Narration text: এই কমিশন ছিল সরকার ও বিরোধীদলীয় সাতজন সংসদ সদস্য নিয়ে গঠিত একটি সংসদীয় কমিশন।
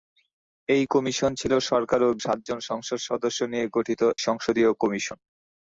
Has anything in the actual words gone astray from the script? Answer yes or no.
yes